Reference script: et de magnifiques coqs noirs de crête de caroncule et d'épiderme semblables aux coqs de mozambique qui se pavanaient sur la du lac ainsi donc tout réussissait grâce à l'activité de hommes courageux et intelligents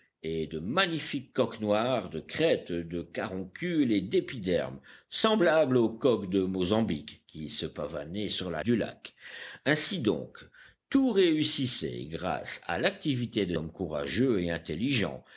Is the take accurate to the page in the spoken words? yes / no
yes